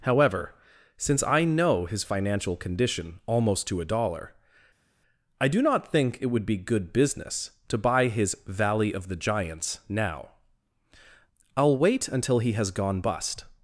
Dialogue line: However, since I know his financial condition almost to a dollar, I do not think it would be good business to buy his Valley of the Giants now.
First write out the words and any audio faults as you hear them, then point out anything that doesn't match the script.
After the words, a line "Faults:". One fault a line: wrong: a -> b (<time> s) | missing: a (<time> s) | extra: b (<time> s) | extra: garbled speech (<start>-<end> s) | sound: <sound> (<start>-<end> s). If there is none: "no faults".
However, since I know his financial condition almost to a dollar, I do not think it would be good business to buy his Valley of the Giants now. I'll wait until he has gone bust
Faults:
extra: I'll wait until he has gone bust (11.5 s)